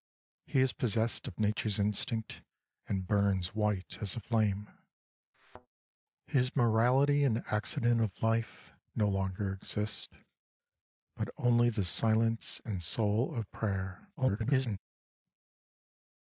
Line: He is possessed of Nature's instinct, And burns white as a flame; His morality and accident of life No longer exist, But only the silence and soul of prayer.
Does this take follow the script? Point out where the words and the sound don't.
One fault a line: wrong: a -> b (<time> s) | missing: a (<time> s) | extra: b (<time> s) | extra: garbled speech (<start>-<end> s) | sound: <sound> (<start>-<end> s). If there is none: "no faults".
sound: thud (5.3-5.7 s)
extra: garbled speech (14.2-14.8 s)